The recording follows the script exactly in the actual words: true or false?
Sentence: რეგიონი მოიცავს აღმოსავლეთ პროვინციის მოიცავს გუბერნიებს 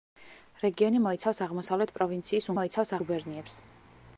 true